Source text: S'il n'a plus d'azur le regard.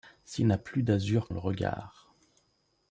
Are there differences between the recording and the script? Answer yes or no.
no